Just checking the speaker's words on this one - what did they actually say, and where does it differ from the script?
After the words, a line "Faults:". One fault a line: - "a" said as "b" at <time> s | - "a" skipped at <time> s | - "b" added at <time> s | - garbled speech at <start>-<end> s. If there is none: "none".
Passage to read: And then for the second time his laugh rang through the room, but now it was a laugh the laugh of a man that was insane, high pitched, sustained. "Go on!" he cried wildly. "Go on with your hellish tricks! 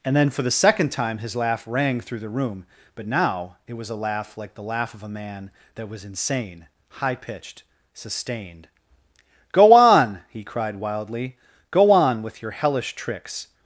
And then for the second time his laugh rang through the room, but now it was a laugh like the laugh of a man that was insane, high pitched, sustained. "Go on!" he cried wildly. "Go on with your hellish tricks!
Faults:
- "like" added at 4.4 s